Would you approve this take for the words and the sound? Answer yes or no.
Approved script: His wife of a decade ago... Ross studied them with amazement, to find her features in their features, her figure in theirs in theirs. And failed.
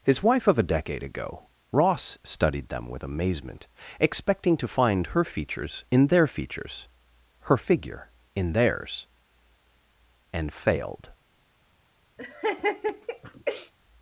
no